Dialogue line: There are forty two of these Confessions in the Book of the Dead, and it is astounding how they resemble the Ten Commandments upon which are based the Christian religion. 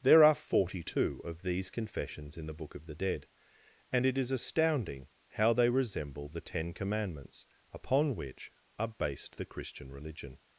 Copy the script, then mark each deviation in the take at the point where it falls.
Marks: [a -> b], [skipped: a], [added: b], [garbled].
There are forty two of these Confessions in the Book of the Dead, and it is astounding how they resemble the Ten Commandments upon which are based the Christian religion.